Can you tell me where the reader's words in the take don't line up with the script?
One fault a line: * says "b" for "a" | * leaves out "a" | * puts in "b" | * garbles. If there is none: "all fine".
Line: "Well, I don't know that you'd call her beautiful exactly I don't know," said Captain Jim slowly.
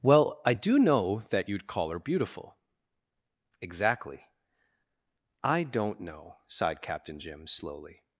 * says "do" for "don't"
* says "sighed" for "said"